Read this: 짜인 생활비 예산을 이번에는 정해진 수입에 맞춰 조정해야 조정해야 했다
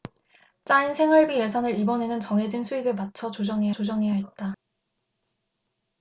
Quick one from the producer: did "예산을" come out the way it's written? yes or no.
yes